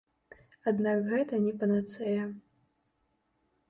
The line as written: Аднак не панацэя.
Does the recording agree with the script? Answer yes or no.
no